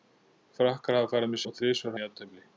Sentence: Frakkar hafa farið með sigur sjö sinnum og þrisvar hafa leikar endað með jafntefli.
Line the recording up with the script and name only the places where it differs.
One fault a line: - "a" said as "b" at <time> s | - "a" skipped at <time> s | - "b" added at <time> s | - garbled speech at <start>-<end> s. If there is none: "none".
- "sigur sjö sinnum" skipped at 1.4 s
- "hafa leikar endað" skipped at 2.0 s